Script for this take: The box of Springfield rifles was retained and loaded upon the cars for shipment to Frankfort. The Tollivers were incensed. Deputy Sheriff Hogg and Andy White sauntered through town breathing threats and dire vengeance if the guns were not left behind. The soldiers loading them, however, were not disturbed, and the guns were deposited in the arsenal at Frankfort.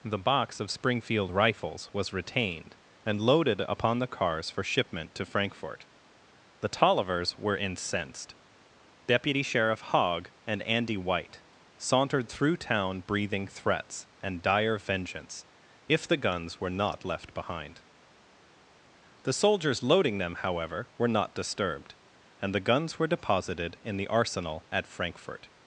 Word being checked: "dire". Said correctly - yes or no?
yes